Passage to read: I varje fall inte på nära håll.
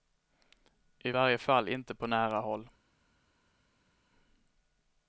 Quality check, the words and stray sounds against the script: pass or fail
pass